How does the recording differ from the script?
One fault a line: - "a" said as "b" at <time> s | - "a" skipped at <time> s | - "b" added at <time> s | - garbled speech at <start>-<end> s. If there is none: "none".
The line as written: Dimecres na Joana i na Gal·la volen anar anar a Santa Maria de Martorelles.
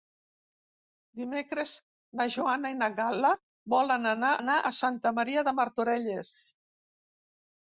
none